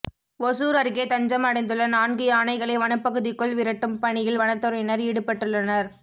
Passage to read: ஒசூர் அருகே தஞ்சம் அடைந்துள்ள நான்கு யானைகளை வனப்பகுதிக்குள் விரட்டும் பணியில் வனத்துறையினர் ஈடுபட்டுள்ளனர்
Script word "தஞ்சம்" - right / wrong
right